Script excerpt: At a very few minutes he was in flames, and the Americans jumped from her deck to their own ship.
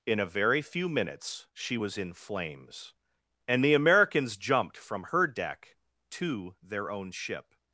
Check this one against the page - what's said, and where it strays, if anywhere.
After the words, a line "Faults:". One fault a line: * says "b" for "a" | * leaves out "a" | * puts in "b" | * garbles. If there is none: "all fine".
In a very few minutes she was in flames, and the Americans jumped from her deck to their own ship.
Faults:
* says "In" for "At"
* says "she" for "he"